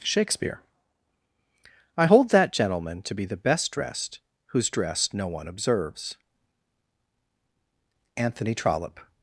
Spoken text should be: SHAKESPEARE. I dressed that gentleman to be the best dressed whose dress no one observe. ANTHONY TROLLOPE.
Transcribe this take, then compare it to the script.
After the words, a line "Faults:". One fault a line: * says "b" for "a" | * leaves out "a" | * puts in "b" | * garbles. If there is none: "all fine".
SHAKESPEARE. I hold that gentleman to be the best dressed whose dress no one observes. ANTHONY TROLLOPE.
Faults:
* says "hold" for "dressed"
* says "observes" for "observe"